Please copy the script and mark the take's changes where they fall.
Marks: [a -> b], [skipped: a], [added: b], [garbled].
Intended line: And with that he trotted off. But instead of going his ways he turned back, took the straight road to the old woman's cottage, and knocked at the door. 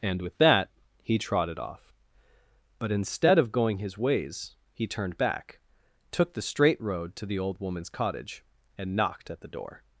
And with that he trotted off. But instead of going his ways he turned back, took the straight road to the old woman's cottage, and knocked at the door.